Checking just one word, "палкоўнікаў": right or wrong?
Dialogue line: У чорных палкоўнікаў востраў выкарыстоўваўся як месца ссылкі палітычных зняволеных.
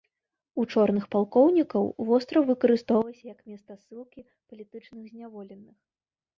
right